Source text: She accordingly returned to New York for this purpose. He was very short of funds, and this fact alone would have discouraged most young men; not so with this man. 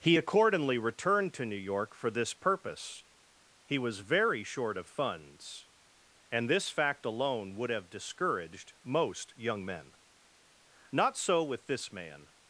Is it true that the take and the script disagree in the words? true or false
true